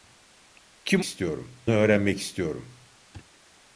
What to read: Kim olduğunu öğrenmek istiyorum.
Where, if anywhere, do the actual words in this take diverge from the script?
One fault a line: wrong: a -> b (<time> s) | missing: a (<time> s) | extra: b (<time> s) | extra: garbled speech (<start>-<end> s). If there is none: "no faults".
wrong: olduğunu -> istiyorum (1.0 s)